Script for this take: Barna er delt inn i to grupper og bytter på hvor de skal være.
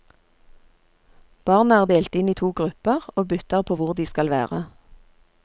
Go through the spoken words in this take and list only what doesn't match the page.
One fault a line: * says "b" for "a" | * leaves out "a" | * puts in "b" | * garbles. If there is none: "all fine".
all fine